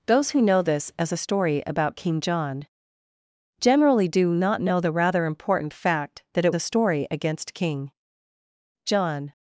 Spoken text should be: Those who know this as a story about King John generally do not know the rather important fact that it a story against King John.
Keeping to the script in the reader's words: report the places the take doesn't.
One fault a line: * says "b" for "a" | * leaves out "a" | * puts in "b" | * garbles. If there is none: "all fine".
all fine